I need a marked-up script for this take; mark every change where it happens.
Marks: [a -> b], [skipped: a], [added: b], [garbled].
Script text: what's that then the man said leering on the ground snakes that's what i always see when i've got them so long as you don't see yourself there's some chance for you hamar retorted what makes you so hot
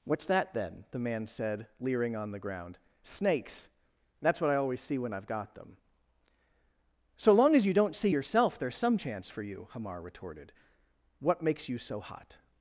what's that then the man said leering on the ground snakes that's what i always see when i've got them so long as you don't see yourself there's some chance for you hamar retorted what makes you so hot